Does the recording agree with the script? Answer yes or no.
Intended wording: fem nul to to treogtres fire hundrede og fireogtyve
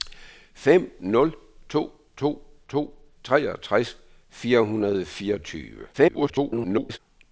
no